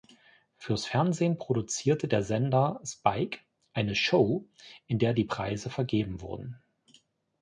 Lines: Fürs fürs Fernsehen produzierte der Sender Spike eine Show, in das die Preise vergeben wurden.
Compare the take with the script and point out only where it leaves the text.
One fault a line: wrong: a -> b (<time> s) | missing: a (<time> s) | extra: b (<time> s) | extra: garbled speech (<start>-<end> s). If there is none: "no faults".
missing: fürs (0.9 s)
wrong: das -> der (5.0 s)